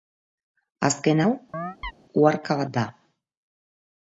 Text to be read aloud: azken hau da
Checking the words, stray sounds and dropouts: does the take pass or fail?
fail